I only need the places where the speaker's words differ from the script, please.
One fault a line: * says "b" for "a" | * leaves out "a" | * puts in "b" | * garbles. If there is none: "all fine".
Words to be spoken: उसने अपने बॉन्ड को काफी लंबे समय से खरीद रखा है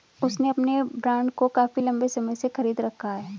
all fine